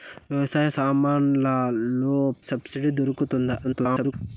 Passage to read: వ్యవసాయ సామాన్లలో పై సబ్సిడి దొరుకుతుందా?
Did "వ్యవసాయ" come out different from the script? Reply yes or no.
no